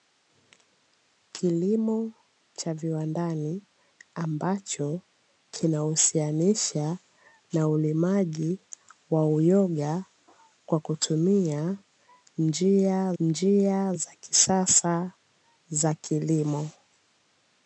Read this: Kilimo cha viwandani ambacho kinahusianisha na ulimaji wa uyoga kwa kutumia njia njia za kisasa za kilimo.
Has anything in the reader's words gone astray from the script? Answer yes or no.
no